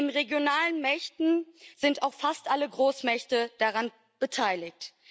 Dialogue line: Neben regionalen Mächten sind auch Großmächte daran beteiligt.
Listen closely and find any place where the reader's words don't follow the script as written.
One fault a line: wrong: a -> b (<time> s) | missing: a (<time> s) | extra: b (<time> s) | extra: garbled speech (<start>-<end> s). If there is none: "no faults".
extra: fast alle (2.1 s)